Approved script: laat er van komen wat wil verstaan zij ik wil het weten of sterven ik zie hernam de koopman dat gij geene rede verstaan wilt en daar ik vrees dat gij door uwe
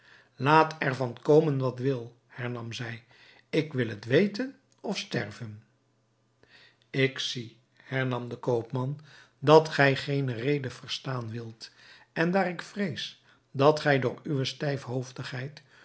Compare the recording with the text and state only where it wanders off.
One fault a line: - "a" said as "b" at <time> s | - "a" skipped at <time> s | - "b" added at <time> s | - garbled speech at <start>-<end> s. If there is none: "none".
- "verstaan" said as "hernam" at 2.3 s